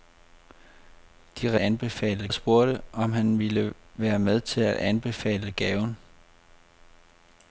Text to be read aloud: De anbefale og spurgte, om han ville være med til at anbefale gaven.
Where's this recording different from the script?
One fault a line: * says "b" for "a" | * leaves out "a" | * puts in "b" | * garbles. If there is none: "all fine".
all fine